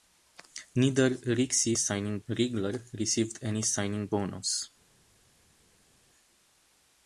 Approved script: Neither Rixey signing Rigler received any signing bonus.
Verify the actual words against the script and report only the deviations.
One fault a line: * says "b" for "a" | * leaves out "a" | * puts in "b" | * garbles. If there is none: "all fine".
all fine